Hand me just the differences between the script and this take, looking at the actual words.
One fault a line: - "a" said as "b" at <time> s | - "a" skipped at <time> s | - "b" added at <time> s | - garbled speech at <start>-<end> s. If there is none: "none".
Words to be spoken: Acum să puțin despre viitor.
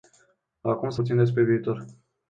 none